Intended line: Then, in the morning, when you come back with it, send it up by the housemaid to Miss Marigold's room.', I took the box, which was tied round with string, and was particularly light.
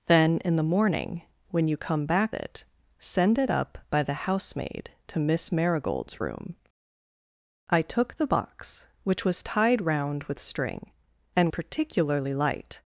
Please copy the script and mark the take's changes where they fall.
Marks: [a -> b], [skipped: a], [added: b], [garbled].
Then, in the morning, when you come back [skipped: with] it, send it up by the housemaid to Miss Marigold's room.', I took the box, which was tied round with string, and [skipped: was] particularly light.